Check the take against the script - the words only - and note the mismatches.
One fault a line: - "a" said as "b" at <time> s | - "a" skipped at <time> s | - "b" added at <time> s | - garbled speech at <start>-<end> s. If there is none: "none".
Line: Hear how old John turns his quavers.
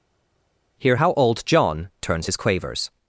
none